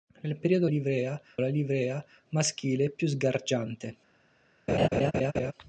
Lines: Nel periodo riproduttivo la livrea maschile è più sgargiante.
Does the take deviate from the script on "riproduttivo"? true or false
true